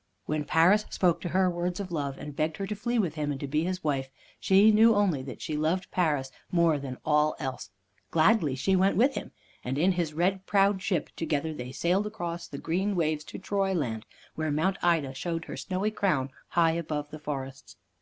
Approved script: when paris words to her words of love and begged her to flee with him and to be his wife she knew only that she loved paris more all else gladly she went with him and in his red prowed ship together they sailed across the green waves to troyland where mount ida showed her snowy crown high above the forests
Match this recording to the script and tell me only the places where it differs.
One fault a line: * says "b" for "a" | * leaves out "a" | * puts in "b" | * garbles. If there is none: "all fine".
* says "spoke" for "words"
* puts in "than"